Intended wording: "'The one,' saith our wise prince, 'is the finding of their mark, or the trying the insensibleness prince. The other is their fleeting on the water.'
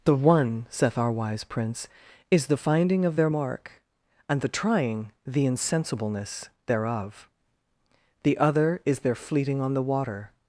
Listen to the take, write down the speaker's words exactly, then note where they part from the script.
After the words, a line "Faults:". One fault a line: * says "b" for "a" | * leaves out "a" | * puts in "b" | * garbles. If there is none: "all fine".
"'The one,' saith our wise prince, 'is the finding of their mark, and the trying the insensibleness thereof. The other is their fleeting on the water.'
Faults:
* says "and" for "or"
* says "thereof" for "prince"